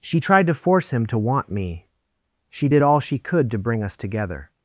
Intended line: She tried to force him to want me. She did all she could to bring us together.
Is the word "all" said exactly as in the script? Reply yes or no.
yes